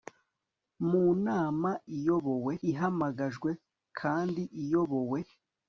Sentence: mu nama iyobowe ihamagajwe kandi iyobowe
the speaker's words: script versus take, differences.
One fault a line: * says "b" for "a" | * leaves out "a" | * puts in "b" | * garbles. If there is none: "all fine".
all fine